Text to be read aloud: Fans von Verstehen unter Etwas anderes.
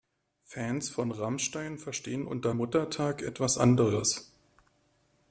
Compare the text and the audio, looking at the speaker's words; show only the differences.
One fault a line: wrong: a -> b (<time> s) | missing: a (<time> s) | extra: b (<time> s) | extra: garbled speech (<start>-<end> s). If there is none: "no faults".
extra: Rammstein (1.1 s)
extra: Muttertag (2.5 s)